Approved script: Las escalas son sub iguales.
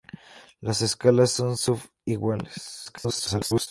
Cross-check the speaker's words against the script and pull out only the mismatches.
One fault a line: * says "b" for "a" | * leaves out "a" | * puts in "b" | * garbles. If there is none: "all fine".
* garbles